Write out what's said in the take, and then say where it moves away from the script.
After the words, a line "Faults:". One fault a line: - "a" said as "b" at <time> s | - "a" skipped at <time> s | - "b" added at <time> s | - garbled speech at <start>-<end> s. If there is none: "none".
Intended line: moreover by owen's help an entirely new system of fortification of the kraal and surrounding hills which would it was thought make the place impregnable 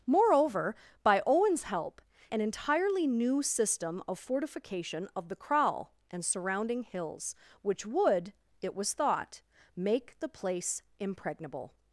moreover by owen's help an entirely new system of fortification of the kraal and surrounding hills which would it was thought make the place impregnable
Faults:
none